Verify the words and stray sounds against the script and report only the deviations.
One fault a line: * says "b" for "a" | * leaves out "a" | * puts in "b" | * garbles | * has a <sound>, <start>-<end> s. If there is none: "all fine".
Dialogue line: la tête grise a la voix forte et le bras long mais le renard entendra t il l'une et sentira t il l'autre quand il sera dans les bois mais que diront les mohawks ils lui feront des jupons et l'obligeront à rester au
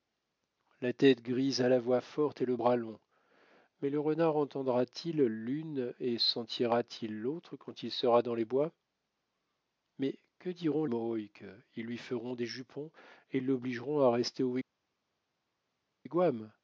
* leaves out "les"